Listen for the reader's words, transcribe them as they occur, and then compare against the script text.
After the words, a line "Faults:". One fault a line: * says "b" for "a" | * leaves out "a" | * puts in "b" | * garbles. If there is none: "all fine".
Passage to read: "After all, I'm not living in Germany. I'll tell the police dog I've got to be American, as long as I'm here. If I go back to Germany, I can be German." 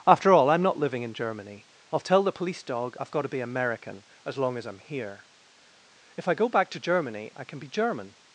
"After all, I'm not living in Germany. I'll tell the police dog I've got to be American, as long as I'm here. If I go back to Germany, I can be German."
Faults:
all fine